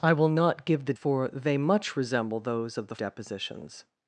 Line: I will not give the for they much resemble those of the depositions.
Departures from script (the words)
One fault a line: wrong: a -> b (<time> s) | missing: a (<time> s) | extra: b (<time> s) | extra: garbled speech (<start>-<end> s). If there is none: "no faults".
no faults